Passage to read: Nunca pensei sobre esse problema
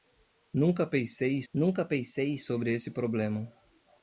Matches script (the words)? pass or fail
fail